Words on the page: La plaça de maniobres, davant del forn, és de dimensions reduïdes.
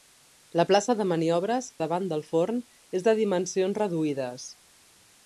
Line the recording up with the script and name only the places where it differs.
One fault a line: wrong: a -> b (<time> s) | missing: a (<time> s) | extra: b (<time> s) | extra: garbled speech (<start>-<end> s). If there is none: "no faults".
no faults